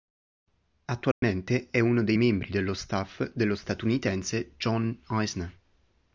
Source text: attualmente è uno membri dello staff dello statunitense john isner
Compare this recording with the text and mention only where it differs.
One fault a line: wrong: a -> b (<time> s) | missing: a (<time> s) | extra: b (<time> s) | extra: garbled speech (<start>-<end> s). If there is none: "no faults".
extra: dei (2.0 s)